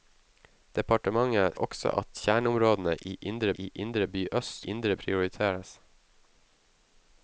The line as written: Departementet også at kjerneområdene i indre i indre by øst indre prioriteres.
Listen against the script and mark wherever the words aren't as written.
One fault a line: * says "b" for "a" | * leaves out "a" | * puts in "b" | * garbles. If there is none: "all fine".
all fine